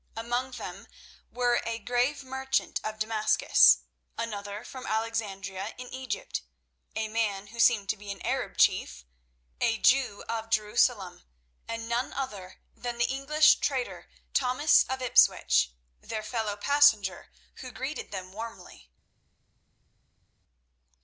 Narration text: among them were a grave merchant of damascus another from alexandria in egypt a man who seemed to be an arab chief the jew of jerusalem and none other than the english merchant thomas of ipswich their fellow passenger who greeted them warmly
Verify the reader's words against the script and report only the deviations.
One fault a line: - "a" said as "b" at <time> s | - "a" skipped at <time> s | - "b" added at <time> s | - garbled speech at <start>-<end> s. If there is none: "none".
- "the" said as "a" at 9.6 s
- "merchant" said as "trader" at 13.6 s